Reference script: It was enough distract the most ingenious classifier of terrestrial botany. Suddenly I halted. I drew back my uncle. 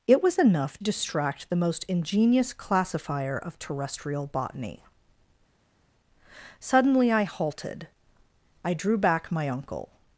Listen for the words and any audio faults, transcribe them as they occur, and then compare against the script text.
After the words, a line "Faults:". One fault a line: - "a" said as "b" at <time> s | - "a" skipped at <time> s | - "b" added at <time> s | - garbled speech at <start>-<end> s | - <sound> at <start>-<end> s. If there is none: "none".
It was enough distract the most ingenious classifier of terrestrial botany. Suddenly I halted. I drew back my uncle.
Faults:
none